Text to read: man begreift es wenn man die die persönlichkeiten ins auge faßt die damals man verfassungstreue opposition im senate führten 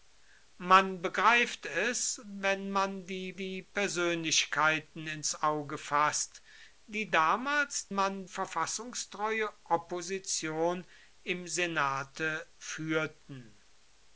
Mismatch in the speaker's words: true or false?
false